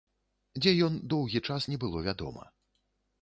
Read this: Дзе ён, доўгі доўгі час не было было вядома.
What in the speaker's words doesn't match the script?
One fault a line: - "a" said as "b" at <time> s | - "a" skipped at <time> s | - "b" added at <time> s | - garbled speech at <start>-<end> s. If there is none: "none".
- "доўгі" skipped at 1.4 s
- "было" skipped at 2.0 s